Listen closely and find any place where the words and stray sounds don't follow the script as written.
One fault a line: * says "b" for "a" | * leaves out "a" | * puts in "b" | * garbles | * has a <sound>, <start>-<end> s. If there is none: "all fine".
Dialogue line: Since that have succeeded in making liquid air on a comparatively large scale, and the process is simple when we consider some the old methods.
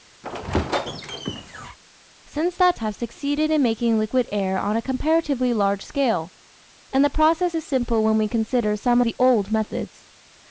* has a squeak, 0.2-1.8 s